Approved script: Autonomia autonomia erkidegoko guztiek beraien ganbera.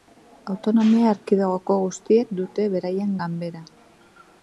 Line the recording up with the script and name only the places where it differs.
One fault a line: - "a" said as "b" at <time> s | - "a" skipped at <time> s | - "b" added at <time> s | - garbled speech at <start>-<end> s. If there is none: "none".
- "autonomia" skipped at 1.1 s
- "dute" added at 2.4 s